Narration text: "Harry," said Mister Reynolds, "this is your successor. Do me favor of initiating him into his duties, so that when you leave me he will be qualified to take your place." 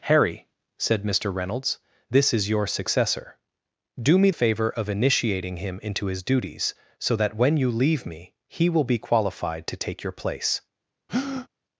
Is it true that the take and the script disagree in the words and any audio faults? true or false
true